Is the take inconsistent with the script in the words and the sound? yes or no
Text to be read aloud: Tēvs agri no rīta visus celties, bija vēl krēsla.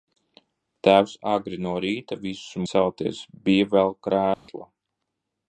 yes